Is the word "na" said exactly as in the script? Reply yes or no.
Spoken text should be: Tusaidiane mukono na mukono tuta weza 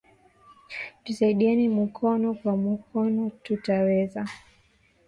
no